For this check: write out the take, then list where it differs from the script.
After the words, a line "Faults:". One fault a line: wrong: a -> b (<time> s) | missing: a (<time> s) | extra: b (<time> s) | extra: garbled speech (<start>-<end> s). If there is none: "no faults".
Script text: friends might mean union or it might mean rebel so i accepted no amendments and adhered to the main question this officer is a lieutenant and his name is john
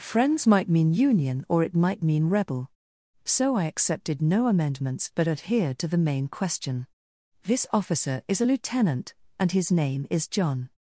friends might mean union or it might mean rebel so i accepted no amendments but adhered to the main question this officer is a lieutenant and his name is john
Faults:
wrong: and -> but (5.1 s)